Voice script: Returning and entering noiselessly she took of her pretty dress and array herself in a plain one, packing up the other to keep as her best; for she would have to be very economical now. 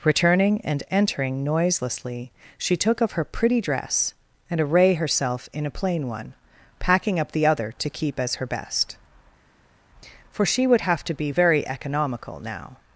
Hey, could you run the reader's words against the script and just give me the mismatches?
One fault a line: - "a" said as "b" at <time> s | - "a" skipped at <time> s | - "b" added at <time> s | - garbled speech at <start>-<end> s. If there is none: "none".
none